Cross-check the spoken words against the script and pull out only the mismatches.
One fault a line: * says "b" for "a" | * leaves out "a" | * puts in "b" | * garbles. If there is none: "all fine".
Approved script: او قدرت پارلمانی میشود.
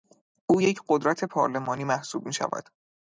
* puts in "یک"
* puts in "محسوب"